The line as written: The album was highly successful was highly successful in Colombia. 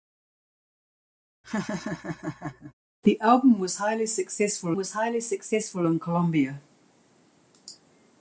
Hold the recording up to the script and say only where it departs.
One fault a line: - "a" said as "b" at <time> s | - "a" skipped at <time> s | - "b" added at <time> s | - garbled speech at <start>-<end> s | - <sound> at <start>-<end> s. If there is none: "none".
- laugh at 1.4-2.7 s